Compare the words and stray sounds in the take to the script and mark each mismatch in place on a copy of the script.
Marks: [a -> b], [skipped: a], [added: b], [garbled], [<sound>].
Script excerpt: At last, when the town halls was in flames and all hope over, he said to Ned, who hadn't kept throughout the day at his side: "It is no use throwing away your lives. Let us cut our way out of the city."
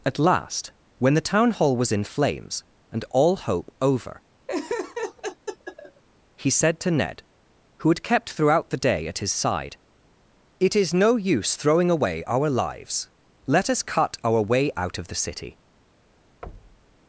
At last, when the town [halls -> hall] was in flames and all hope over, [laugh] he said to Ned, who [hadn't -> had] kept throughout the day at his side: "It is no use throwing away [your -> our] lives. Let us cut our way out of the city." [thud]